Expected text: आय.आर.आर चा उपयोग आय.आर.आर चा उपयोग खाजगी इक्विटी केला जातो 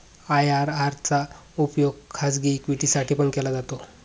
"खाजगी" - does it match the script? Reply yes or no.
no